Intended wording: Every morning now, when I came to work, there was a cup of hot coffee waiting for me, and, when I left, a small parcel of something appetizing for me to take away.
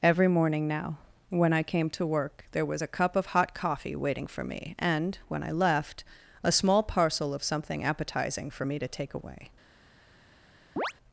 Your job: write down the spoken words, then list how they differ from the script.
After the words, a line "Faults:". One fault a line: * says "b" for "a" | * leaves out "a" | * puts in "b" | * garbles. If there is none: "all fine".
Every morning now, when I came to work, there was a cup of hot coffee waiting for me, and, when I left, a small parcel of something appetizing for me to take away.
Faults:
all fine